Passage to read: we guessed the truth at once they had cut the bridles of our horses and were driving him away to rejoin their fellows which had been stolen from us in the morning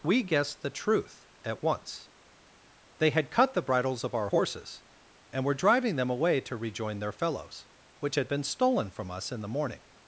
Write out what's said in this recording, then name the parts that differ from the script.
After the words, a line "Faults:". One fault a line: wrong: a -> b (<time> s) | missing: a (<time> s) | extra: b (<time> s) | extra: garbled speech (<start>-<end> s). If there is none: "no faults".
we guessed the truth at once they had cut the bridles of our horses and were driving them away to rejoin their fellows which had been stolen from us in the morning
Faults:
wrong: him -> them (5.9 s)